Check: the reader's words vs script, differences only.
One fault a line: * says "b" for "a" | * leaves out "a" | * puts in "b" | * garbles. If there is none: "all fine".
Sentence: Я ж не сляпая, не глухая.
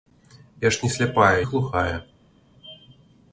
* leaves out "не"